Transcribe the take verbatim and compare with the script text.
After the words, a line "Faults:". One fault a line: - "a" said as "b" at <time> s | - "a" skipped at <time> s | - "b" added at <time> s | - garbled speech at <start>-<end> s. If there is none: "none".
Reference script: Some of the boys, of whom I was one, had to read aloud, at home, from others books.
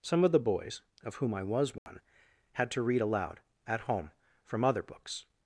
Some of the boys, of whom I was one, had to read aloud, at home, from other books.
Faults:
- "others" said as "other" at 4.6 s